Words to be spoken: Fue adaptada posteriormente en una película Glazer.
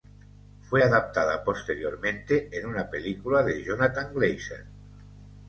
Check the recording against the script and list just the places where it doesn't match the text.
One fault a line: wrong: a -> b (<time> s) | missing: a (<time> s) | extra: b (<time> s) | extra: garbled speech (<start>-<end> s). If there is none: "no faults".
extra: de Jonathan (3.4 s)